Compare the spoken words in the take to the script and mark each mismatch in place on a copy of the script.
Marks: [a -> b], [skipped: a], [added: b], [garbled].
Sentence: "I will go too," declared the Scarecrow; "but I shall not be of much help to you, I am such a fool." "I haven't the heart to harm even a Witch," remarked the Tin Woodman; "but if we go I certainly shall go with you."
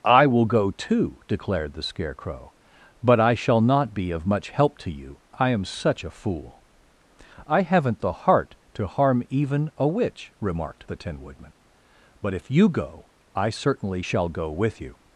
"I will go too," declared the Scarecrow; "but I shall not be of much help to you, I am such a fool." "I haven't the heart to harm even a Witch," remarked the Tin Woodman; "but if [we -> you] go I certainly shall go with you."